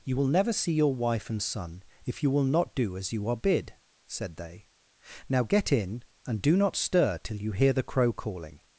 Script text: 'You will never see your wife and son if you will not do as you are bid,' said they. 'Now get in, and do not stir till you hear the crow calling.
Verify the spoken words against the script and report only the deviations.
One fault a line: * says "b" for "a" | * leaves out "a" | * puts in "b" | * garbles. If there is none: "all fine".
all fine